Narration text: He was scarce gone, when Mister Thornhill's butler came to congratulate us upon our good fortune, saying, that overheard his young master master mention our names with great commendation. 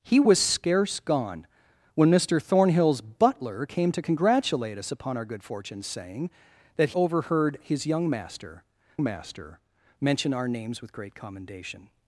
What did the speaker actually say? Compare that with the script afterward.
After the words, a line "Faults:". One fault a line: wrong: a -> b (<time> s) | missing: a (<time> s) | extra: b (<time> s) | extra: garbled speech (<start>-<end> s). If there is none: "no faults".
He was scarce gone, when Mister Thornhill's butler came to congratulate us upon our good fortune, saying, that overheard his young master master mention our names with great commendation.
Faults:
no faults